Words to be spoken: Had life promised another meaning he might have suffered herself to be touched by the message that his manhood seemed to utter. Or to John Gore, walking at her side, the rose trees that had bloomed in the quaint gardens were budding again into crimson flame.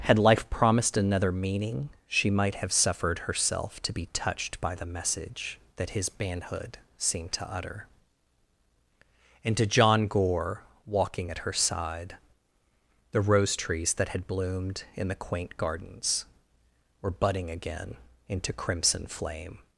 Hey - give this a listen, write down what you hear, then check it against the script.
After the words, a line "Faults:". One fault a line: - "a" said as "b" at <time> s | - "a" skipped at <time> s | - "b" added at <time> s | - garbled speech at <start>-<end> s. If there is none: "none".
Had life promised another meaning she might have suffered herself to be touched by the message that his manhood seemed to utter. And to John Gore, walking at her side, the rose trees that had bloomed in the quaint gardens were budding again into crimson flame.
Faults:
- "he" said as "she" at 2.1 s
- "Or" said as "And" at 9.4 s